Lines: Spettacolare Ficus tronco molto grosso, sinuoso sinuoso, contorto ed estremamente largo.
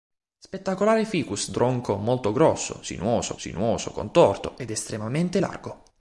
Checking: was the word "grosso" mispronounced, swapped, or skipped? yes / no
no